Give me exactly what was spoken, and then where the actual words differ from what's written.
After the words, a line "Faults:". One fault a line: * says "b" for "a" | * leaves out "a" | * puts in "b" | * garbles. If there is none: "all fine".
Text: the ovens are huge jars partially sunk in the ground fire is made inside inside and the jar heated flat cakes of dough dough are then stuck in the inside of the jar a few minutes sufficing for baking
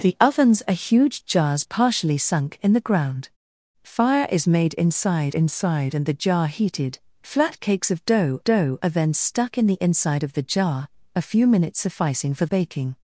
the ovens are huge jars partially sunk in the ground fire is made inside inside and the jar heated flat cakes of dough dough are then stuck in the inside of the jar a few minutes sufficing for baking
Faults:
all fine